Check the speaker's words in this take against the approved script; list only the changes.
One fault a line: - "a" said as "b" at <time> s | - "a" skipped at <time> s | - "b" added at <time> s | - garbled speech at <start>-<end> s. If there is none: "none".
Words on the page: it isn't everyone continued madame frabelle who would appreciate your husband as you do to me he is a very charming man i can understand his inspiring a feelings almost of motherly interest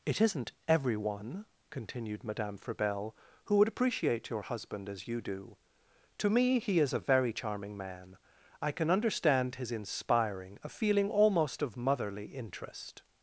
- "feelings" said as "feeling" at 10.7 s